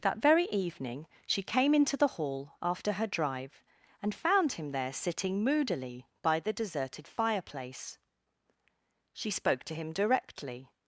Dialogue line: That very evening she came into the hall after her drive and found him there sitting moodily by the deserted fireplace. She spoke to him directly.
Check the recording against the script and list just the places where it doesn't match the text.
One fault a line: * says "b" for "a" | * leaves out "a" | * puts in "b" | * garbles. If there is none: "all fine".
all fine